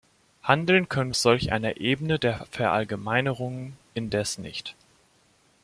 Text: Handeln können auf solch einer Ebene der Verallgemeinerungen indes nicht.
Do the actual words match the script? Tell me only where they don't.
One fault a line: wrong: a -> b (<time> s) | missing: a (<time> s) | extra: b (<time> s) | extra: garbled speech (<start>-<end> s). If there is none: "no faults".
no faults